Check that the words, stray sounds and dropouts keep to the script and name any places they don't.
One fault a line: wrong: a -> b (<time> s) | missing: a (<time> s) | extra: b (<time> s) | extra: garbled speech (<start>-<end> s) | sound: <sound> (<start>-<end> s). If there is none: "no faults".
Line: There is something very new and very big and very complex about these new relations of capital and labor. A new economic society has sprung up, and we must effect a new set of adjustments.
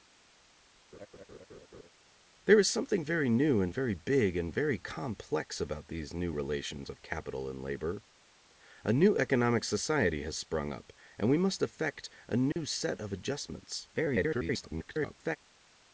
sound: laugh (0.9-1.9 s)
sound: dropout (12.5-12.6 s)
extra: garbled speech (13.9-15.4 s)